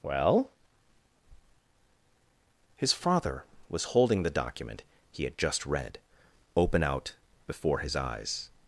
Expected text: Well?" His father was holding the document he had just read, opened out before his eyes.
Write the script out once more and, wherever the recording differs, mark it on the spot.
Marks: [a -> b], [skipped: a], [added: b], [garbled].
Well?" His father was holding the document he had just read, [opened -> open] out before his eyes.